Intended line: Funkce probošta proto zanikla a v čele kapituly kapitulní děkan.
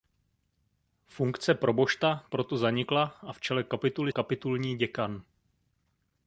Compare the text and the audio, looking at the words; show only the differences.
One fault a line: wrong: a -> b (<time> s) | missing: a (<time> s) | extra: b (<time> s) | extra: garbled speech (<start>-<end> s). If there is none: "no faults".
no faults